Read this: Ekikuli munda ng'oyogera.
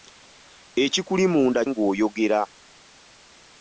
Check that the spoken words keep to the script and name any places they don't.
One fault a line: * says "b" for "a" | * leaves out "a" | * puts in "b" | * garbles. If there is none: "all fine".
all fine